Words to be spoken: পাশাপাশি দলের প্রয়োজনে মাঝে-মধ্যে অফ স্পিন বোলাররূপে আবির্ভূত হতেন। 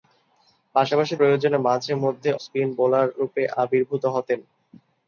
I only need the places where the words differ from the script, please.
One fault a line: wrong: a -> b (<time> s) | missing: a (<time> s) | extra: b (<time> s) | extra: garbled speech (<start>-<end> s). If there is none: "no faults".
missing: দলের (1.1 s)
missing: অফ (2.3 s)